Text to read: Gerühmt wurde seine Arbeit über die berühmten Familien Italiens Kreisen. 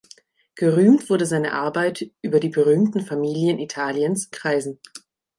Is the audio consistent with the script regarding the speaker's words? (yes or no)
yes